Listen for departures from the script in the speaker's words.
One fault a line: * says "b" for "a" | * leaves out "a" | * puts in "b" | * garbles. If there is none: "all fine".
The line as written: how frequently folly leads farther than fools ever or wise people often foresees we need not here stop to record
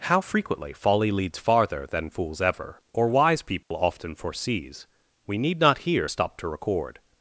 all fine